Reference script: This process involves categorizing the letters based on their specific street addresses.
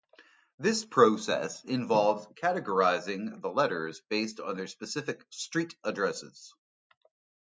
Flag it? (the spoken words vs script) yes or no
no